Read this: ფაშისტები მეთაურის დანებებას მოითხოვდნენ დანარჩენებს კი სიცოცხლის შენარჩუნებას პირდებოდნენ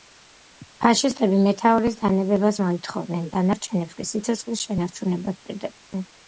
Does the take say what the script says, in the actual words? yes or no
yes